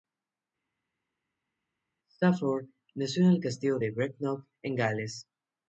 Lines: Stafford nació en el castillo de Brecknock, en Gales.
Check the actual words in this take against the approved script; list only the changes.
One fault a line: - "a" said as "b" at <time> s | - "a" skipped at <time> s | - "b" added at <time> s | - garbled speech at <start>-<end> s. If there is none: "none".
none